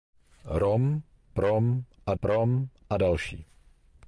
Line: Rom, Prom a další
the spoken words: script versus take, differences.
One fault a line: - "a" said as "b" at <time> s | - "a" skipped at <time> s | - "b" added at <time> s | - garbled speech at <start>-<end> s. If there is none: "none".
- "Prom a" added at 2.2 s